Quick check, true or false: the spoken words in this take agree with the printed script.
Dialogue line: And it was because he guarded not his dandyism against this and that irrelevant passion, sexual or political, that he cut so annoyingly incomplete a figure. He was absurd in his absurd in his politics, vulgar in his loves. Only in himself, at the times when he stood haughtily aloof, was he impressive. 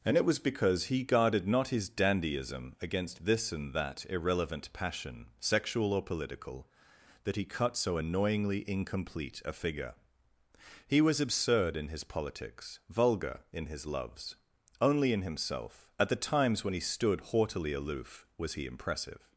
false